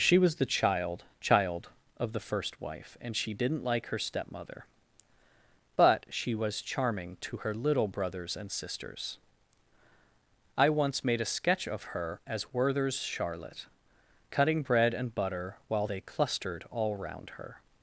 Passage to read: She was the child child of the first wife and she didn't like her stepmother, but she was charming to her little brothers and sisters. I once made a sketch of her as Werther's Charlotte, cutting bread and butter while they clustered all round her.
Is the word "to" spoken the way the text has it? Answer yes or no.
yes